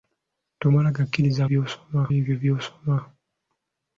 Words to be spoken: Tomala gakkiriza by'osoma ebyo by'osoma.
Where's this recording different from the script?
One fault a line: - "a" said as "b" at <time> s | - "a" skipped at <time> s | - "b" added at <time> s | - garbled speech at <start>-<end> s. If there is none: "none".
none